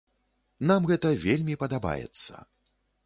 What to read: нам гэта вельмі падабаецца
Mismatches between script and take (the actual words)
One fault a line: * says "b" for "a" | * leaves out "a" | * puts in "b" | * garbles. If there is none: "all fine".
all fine